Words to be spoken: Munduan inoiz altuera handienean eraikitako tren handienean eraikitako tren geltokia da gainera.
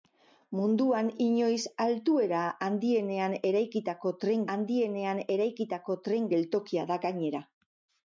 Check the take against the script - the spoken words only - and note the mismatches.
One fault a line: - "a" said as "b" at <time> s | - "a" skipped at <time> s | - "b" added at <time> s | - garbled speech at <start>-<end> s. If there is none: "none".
none